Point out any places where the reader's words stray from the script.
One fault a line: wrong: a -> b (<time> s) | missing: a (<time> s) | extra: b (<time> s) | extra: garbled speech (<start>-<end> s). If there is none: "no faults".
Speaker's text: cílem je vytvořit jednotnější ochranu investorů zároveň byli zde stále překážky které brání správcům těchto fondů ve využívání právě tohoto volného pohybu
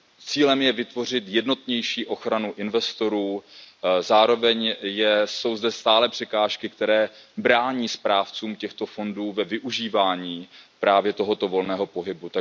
wrong: byli -> jsou (5.2 s)